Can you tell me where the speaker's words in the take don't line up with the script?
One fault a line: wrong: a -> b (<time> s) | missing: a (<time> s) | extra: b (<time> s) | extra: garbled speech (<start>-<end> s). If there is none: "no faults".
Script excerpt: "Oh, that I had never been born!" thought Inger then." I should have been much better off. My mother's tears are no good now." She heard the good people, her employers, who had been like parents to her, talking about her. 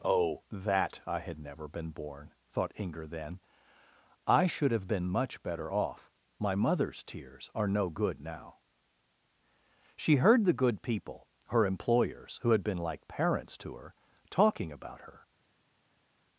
no faults